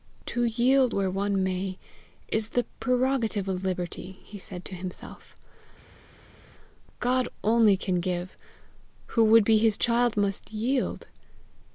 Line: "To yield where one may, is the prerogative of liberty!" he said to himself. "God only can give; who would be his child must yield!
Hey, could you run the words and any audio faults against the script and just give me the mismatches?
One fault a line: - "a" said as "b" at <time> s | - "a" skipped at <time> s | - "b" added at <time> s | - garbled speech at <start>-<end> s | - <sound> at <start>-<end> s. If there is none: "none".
none